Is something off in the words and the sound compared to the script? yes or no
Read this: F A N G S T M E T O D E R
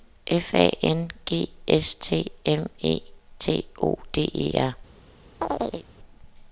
yes